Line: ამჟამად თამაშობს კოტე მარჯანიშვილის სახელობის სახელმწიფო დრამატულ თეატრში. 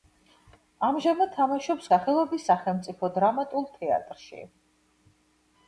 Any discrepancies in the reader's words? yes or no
yes